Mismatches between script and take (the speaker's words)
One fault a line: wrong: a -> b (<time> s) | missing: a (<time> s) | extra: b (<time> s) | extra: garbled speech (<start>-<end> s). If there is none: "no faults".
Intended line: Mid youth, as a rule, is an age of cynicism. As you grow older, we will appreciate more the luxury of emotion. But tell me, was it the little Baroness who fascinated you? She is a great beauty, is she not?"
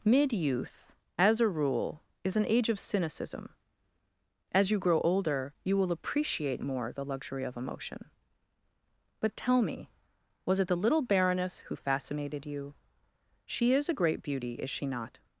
wrong: we -> you (5.6 s)